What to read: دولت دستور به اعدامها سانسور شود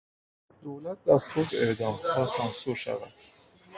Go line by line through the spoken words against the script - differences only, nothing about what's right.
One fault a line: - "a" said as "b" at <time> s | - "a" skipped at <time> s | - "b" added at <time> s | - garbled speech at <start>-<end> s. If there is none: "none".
none